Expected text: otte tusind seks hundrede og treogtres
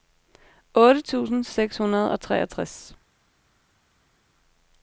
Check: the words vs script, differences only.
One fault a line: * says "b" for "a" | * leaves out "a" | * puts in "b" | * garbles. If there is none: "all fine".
all fine